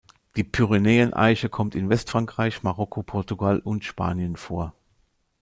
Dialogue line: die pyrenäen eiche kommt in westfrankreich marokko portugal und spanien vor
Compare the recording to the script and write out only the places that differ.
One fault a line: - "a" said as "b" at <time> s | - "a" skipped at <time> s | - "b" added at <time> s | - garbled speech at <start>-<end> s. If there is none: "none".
none